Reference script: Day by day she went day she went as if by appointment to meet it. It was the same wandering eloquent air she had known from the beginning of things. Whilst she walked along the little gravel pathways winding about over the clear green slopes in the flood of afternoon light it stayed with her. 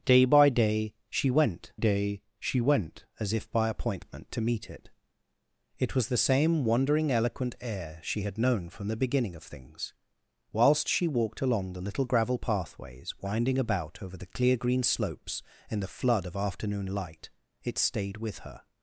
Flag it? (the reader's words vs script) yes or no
no